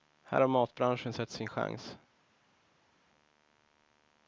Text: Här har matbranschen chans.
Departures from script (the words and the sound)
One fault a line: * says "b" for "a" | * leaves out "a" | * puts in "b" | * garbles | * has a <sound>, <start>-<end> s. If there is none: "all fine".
* puts in "sett sin"